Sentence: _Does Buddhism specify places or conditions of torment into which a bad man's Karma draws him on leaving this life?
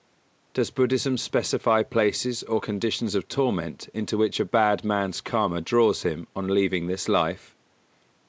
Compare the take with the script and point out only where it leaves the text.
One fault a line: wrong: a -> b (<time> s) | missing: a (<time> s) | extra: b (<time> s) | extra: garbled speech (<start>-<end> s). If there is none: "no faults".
no faults